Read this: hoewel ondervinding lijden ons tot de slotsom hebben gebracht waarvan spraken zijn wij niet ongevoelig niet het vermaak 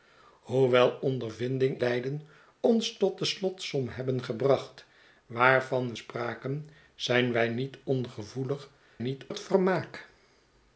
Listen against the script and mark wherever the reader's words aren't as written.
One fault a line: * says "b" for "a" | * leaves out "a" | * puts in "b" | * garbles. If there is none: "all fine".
all fine